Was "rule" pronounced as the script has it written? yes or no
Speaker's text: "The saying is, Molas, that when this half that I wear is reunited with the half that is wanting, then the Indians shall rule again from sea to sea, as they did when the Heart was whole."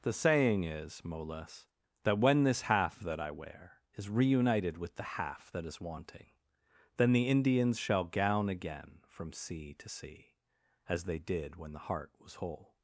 no